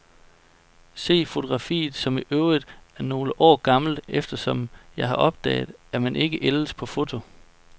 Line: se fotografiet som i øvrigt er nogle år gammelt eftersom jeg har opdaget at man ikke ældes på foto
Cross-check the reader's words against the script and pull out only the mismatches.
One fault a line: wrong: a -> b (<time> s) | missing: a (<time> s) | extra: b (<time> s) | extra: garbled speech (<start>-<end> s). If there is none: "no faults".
no faults